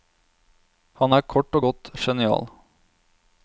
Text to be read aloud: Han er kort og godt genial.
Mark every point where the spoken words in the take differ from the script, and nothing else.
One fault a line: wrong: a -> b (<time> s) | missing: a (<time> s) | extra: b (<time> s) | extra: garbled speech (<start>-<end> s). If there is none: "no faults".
no faults